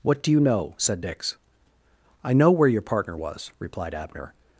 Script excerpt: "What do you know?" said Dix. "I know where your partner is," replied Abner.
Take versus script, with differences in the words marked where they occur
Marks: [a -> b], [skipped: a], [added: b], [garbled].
"What do you know?" said Dix. "I know where your partner [is," -> was] replied Abner.